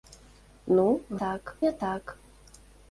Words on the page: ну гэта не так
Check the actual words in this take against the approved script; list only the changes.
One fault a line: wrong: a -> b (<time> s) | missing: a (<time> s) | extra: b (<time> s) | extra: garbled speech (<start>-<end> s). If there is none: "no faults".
wrong: гэта -> так (1.2 s)